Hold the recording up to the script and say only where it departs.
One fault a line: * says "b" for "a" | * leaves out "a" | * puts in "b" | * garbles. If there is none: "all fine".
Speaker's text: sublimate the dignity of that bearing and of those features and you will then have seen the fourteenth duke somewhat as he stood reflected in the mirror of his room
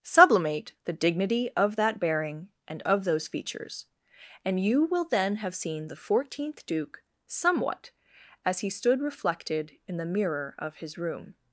all fine